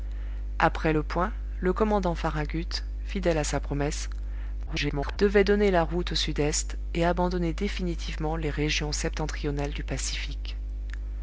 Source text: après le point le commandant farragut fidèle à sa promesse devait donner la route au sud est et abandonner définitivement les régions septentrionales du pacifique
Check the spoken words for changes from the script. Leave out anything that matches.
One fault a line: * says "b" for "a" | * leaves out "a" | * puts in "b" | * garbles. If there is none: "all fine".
* garbles